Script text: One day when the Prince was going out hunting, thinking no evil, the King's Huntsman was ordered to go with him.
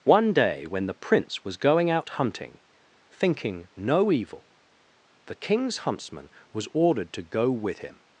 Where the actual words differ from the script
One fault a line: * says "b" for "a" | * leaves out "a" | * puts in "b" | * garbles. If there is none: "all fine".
all fine